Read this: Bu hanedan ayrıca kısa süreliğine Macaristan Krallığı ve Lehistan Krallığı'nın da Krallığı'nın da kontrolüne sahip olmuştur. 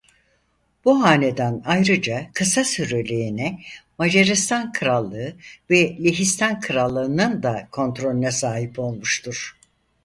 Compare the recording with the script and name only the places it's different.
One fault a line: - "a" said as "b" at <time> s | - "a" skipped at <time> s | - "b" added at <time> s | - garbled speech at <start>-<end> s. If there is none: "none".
- "Krallığı'nın da" skipped at 7.7 s